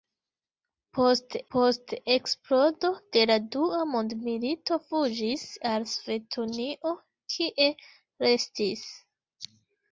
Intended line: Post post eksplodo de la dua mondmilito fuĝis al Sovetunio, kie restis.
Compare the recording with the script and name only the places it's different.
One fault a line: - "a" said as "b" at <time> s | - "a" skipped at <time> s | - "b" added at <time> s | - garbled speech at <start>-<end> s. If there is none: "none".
none